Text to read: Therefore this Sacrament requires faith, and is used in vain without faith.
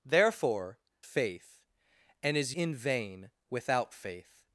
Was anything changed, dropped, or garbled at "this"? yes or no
yes